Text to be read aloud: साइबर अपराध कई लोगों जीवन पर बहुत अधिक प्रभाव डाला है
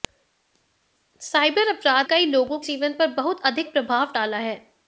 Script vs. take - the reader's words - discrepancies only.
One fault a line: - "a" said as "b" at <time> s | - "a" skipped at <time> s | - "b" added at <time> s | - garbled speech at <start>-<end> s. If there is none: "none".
none